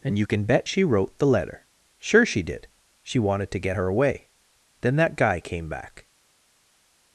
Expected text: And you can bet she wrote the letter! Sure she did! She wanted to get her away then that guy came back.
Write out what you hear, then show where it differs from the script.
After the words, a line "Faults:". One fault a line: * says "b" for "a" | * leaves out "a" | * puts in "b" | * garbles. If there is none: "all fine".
And you can bet she wrote the letter! Sure she did! She wanted to get her away then that guy came back.
Faults:
all fine